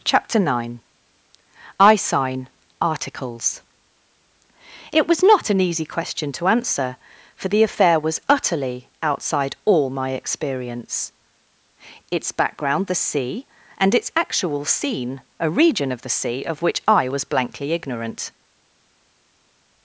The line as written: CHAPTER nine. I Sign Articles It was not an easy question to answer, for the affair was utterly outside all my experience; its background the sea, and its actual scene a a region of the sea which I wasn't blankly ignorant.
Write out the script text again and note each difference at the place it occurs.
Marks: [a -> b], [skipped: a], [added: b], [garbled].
CHAPTER nine. I Sign Articles It was not an easy question to answer, for the affair was utterly outside all my experience; its background the sea, and its actual scene a [skipped: a] region of the sea [added: of] which I [wasn't -> was] blankly ignorant.